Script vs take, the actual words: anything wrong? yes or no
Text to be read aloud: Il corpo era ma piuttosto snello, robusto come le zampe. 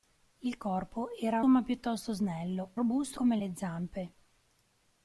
no